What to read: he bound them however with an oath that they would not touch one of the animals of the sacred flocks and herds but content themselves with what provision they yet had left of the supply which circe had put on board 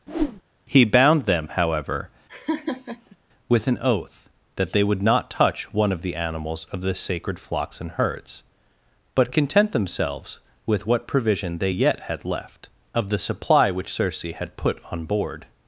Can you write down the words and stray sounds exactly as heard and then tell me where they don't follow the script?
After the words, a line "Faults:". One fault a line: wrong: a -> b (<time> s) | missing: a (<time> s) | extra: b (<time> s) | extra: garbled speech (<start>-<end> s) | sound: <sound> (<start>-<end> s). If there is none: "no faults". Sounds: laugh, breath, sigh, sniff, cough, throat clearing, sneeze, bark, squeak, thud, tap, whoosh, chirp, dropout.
he bound them however with an oath that they would not touch one of the animals of the sacred flocks and herds but content themselves with what provision they yet had left of the supply which circe had put on board
Faults:
sound: whoosh (0.1-0.4 s)
sound: laugh (2.3-3.2 s)